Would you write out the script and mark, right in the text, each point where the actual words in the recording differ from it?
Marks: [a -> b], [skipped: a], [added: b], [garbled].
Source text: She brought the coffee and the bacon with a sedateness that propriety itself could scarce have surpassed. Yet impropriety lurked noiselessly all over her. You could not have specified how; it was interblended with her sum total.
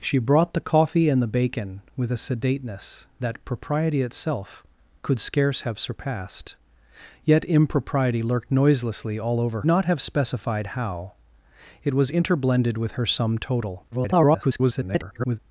She brought the coffee and the bacon with a sedateness that propriety itself could scarce have surpassed. Yet impropriety lurked noiselessly all over [skipped: her. You could] not have specified how; it was interblended with her sum total. [garbled]